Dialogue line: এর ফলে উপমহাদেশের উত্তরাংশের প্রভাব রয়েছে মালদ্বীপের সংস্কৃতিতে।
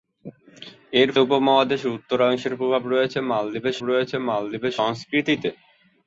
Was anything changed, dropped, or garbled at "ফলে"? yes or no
yes